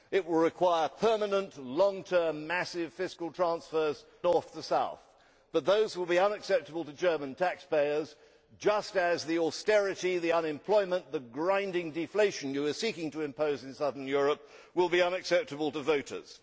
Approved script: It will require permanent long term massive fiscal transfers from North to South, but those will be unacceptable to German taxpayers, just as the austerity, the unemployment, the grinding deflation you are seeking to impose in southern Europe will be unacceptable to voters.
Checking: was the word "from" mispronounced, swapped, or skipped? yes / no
yes